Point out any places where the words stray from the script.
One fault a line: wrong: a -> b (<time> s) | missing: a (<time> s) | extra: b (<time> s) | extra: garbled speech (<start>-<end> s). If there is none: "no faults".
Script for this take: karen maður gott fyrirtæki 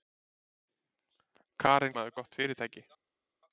no faults